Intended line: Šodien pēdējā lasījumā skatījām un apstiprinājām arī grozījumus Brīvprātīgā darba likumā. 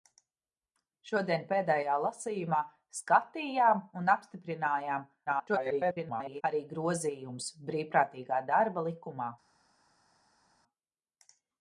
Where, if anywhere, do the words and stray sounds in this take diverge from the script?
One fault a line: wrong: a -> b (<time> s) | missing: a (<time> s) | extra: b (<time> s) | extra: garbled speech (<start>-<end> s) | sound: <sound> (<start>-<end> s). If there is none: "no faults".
extra: garbled speech (5.3-6.4 s)